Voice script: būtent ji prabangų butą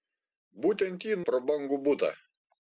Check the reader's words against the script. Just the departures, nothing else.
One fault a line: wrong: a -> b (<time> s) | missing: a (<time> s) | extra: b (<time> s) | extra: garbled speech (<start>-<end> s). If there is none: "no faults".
no faults